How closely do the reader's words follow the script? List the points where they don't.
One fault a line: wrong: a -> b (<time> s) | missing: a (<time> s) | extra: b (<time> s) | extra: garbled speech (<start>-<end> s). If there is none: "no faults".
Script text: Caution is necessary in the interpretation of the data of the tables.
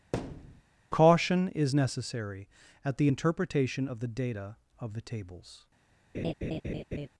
wrong: in -> at (2.8 s)